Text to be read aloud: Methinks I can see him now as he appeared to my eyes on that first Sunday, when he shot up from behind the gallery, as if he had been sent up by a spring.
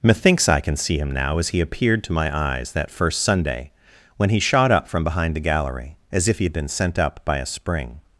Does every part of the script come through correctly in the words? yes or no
no